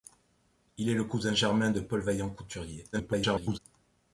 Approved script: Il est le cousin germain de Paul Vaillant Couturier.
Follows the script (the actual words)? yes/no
no